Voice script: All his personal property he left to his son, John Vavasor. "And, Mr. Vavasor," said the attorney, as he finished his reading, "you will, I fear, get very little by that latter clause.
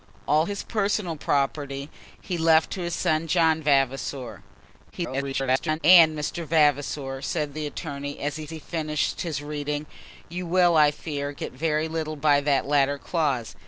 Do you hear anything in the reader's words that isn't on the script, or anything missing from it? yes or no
yes